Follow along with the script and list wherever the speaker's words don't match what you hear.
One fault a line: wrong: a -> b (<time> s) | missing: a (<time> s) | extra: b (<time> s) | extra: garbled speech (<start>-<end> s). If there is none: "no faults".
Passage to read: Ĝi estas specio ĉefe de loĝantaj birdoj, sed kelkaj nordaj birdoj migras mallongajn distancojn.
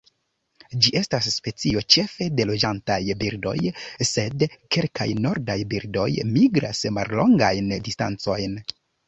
no faults